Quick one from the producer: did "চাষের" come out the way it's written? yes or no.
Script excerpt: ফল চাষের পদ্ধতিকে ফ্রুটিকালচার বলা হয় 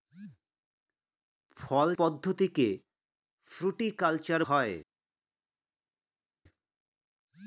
no